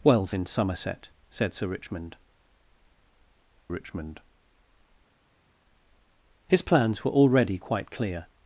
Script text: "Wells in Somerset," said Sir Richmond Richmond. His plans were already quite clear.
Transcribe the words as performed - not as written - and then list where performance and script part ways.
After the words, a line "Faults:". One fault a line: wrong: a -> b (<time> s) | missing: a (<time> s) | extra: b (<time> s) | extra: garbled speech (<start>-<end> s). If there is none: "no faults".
"Wells in Somerset," said Sir Richmond Richmond. His plans were already quite clear.
Faults:
no faults